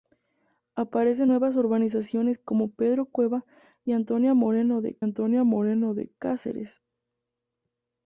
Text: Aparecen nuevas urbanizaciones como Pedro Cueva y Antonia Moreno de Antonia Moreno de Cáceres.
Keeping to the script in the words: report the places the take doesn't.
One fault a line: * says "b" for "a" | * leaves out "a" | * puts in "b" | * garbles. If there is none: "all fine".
all fine